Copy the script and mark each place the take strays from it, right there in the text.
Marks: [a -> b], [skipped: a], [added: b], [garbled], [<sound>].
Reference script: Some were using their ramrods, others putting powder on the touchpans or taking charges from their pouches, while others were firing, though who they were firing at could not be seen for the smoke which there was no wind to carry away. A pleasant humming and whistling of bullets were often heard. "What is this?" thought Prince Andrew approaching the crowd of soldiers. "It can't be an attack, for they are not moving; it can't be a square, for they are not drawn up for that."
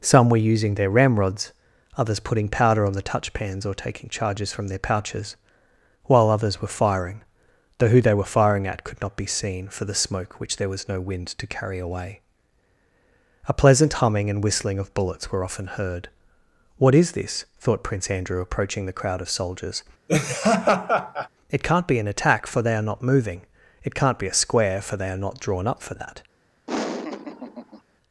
Some were using their ramrods, others putting powder on the touchpans or taking charges from their pouches, while others were firing, though who they were firing at could not be seen for the smoke which there was no wind to carry away. A pleasant humming and whistling of bullets were often heard. "What is this?" thought Prince Andrew approaching the crowd of soldiers. [laugh] "It can't be an attack, for they are not moving; it can't be a square, for they are not drawn up for that." [laugh]